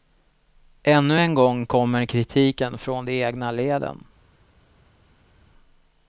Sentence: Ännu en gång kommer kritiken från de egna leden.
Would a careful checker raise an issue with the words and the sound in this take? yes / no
no